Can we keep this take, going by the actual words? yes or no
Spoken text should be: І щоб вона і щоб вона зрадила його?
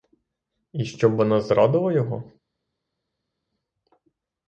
no